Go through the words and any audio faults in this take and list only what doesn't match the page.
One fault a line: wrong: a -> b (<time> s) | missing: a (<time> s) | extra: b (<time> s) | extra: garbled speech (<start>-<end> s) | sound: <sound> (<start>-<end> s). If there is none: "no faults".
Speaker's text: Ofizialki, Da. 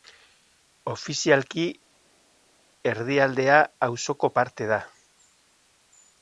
extra: Erdialdea auzoko parte (2.9 s)